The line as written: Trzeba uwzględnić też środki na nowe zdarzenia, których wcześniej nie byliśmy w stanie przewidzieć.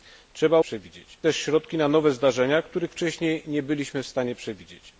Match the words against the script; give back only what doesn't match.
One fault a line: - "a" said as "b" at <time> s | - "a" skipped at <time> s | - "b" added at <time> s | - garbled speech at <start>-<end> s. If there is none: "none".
- "uwzględnić" said as "przewidzieć" at 0.6 s